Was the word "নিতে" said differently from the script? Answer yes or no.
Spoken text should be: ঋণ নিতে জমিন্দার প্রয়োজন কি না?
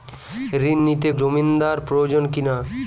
no